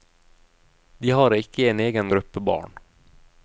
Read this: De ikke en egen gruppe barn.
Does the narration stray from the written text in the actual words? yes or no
yes